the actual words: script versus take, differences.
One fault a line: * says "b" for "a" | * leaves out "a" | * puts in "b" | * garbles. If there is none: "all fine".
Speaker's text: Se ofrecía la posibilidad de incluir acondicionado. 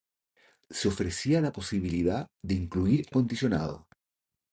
all fine